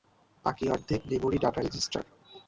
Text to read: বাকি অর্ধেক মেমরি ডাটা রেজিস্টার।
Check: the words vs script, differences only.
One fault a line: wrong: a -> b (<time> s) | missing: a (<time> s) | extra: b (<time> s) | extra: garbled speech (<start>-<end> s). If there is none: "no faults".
no faults